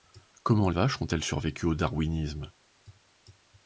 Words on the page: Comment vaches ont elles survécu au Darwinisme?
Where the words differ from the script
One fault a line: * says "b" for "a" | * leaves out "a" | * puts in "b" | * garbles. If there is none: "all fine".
all fine